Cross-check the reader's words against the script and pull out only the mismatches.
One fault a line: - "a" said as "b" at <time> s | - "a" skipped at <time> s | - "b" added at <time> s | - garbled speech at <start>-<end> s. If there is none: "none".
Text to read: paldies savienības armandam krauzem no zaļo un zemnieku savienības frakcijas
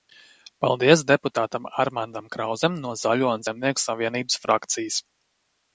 - "savienības" said as "deputātam" at 1.1 s